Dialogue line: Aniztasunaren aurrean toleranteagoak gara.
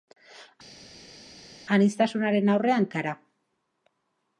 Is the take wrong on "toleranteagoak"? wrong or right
wrong